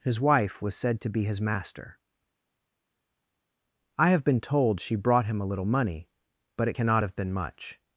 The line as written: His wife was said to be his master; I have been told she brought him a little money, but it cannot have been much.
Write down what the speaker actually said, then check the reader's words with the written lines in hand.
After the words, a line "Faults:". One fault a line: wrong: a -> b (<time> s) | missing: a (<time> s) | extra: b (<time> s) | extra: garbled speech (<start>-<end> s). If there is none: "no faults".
His wife was said to be his master; I have been told she brought him a little money, but it cannot have been much.
Faults:
no faults